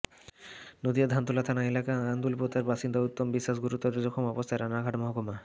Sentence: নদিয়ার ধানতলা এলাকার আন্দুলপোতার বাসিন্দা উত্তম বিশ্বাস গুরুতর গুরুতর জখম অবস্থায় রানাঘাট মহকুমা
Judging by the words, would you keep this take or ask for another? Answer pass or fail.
fail